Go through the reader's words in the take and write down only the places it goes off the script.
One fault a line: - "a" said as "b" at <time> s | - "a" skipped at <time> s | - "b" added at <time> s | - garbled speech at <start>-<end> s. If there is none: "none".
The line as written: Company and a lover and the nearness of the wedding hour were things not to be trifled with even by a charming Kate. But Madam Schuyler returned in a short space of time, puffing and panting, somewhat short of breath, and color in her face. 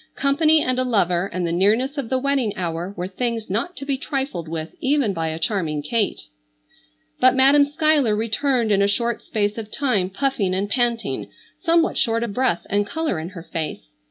none